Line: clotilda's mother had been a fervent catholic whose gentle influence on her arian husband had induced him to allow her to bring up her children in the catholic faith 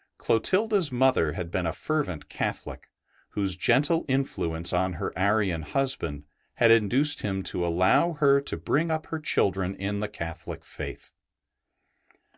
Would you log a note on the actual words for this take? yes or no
no